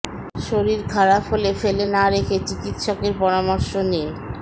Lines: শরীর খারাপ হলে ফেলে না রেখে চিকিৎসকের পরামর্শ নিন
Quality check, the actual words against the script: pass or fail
pass